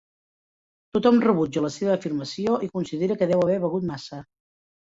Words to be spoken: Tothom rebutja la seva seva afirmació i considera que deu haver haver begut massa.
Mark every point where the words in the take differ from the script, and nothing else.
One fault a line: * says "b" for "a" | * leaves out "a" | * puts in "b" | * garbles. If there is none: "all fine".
* leaves out "seva"
* leaves out "haver"